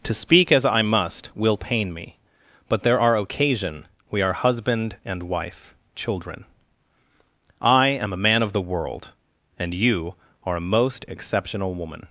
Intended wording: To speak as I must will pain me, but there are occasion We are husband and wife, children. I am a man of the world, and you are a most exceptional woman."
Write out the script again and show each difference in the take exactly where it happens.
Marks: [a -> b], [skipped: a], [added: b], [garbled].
To speak as I must will pain me, but there are occasion We are husband and wife, children. I am a man of the world, and you are a most exceptional woman."